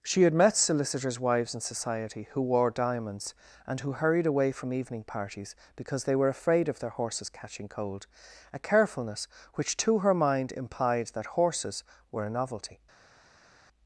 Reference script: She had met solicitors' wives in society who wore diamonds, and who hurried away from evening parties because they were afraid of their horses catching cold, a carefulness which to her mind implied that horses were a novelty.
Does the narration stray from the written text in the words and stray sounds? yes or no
no